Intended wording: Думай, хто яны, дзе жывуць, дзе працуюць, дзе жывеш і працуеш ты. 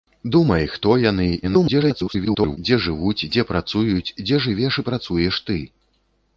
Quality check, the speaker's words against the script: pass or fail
fail